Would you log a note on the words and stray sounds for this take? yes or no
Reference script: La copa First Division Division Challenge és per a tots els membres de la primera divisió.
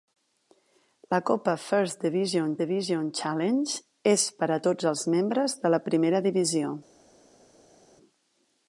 no